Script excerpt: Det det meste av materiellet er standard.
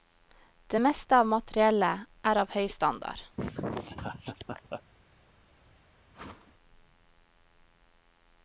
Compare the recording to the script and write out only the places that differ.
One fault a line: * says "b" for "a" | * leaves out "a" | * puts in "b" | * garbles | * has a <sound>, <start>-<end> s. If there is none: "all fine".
* leaves out "det"
* puts in "av høy"
* has a laugh, 3.4-4.8 s
* has a whoosh, 6.1-6.5 s